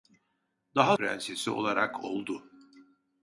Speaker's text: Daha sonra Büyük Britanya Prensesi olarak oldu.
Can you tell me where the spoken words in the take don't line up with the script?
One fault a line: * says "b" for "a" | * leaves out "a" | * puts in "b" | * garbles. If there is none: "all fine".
* leaves out "sonra Büyük Britanya"